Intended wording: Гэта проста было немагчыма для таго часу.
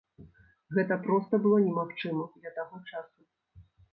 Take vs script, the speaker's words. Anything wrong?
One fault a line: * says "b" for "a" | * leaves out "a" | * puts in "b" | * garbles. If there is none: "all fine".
all fine